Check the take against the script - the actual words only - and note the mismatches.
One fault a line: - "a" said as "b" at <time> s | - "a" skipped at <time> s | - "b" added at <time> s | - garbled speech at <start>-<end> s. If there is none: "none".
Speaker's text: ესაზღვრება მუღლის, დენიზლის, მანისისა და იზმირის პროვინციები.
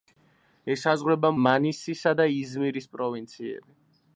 - "მუღლის დენიზლის" skipped at 1.3 s